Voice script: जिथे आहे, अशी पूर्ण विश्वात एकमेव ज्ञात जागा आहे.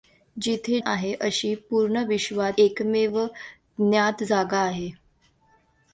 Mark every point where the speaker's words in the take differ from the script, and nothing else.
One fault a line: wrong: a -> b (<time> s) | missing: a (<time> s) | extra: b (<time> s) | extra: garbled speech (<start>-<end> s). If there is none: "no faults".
no faults